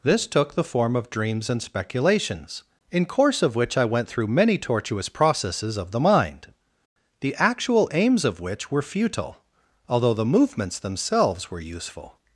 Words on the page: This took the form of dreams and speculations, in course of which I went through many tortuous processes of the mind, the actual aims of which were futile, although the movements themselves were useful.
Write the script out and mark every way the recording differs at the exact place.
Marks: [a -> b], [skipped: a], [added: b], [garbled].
This took the form of dreams and speculations, in course of which I went through many tortuous processes of the mind, the actual aims of which were futile, although the movements themselves were useful.